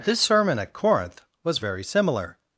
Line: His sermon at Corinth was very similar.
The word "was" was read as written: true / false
true